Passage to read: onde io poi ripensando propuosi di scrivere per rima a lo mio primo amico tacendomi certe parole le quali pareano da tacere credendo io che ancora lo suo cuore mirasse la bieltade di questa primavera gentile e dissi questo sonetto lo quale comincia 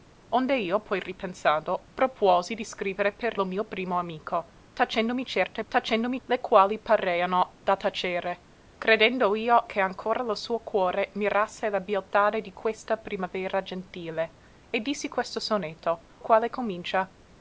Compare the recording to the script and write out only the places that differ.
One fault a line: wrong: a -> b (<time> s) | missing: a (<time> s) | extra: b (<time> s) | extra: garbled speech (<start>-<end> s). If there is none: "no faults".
missing: rima a (3.4 s)
wrong: parole -> tacendomi (5.7 s)
missing: lo (16.0 s)